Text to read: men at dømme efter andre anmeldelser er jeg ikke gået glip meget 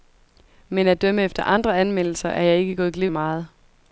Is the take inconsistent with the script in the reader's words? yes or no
no